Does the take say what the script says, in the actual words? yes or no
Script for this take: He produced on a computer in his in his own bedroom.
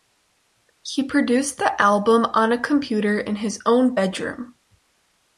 no